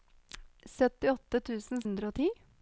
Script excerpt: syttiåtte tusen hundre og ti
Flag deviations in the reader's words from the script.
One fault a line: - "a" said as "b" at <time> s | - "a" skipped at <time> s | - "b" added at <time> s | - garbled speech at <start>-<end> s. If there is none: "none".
none